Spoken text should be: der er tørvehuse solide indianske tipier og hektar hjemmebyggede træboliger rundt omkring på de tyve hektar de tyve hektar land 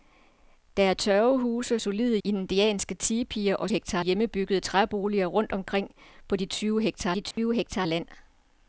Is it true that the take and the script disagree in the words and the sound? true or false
true